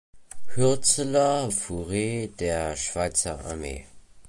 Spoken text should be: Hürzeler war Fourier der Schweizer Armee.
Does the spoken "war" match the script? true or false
false